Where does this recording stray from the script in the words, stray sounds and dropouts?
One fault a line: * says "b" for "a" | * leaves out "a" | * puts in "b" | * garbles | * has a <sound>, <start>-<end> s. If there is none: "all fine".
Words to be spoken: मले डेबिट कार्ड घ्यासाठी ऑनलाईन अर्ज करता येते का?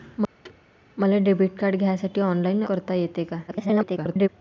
* has a thud, 0.4-0.6 s
* leaves out "अर्ज"
* garbles